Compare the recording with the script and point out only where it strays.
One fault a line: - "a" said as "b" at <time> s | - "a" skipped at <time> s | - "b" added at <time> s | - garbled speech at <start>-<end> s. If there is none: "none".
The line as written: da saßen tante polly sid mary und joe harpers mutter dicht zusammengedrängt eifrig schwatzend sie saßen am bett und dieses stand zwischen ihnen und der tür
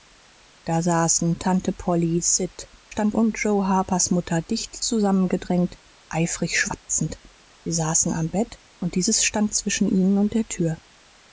- "mary" said as "stand" at 2.9 s